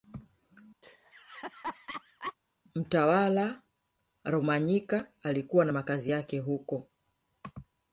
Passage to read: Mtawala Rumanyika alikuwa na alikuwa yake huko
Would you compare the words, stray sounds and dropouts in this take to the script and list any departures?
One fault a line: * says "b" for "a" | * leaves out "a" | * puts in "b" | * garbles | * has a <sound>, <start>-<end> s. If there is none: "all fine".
* has a laugh, 0.8-2.3 s
* says "makazi" for "alikuwa"